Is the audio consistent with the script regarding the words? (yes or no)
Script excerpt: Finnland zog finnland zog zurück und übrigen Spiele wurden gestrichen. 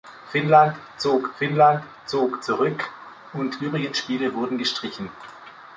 yes